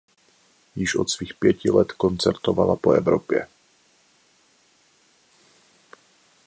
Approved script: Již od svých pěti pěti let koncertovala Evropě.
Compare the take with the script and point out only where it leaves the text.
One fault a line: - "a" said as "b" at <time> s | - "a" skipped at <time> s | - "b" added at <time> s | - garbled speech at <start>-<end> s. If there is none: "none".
- "pěti" skipped at 1.7 s
- "po" added at 2.7 s